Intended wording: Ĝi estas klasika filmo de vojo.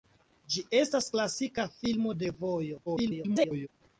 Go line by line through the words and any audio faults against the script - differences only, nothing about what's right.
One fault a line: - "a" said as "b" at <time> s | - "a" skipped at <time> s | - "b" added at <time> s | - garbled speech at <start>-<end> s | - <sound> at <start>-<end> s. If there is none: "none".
- garbled speech at 2.9-3.7 s